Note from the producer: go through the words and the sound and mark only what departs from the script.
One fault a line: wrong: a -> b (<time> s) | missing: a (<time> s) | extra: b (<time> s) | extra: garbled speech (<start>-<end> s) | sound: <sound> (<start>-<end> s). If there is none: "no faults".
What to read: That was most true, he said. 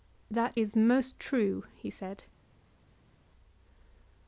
wrong: was -> is (0.5 s)